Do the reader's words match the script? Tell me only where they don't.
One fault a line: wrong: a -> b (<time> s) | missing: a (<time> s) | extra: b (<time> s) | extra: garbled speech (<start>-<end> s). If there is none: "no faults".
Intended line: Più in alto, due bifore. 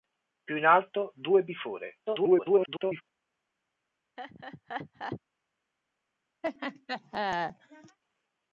extra: garbled speech (2.1-3.0 s)